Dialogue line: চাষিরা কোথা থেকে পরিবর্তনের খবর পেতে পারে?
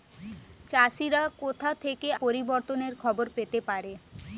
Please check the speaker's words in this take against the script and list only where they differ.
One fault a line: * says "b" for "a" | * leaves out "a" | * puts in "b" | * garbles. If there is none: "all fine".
all fine